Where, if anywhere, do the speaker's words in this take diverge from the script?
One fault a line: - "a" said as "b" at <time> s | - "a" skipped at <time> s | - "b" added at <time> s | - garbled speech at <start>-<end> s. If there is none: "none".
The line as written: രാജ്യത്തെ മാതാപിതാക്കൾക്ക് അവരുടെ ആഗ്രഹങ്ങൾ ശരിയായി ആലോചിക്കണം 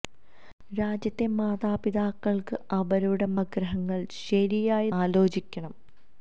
none